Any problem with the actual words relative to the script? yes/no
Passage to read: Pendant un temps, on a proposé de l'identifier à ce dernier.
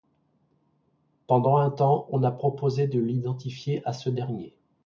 no